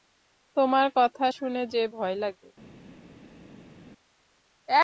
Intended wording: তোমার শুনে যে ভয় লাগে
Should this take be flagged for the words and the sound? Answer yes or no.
yes